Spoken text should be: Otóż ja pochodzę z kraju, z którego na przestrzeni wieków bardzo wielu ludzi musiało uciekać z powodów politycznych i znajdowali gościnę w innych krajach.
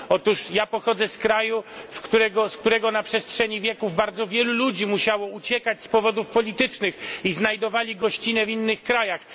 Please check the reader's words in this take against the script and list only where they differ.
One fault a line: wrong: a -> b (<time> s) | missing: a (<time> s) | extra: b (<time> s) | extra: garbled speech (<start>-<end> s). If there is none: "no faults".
no faults